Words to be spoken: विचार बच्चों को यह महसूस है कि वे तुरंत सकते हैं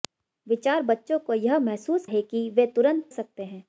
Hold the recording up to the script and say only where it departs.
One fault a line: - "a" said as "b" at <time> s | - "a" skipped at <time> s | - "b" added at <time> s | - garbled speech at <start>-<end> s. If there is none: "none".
none